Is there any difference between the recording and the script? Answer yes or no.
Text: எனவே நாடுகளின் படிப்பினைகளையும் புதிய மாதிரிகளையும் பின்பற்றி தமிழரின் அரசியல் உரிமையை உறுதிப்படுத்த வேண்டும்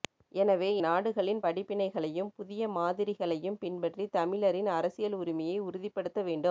no